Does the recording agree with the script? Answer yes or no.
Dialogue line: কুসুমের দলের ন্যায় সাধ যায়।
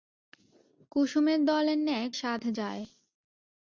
yes